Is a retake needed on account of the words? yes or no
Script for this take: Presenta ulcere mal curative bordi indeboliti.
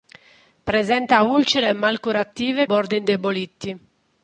no